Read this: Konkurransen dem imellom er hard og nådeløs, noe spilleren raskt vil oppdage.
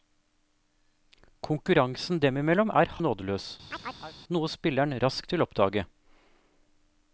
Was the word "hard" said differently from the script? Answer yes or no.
yes